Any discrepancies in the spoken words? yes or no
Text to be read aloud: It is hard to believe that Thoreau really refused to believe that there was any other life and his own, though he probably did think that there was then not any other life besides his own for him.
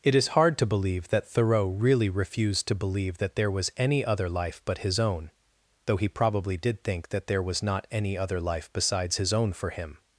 yes